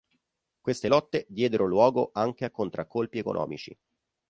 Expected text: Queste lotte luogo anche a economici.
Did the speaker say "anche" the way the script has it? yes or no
yes